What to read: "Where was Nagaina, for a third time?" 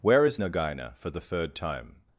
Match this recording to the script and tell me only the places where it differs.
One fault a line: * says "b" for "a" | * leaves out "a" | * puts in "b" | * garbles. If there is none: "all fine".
* says "is" for "was"
* says "the" for "a"